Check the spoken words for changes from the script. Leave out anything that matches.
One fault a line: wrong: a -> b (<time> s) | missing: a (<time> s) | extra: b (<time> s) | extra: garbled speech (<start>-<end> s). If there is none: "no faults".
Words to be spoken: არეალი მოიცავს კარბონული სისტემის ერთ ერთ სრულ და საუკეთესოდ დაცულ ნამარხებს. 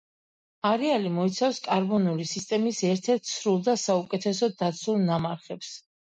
no faults